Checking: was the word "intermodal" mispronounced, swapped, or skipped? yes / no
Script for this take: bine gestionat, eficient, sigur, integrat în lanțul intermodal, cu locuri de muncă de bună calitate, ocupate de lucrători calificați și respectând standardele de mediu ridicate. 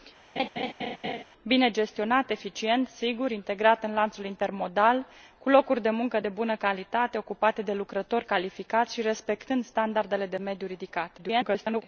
no